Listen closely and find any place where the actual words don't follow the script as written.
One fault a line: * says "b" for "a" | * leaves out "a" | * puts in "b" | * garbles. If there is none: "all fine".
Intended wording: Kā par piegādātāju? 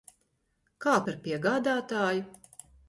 all fine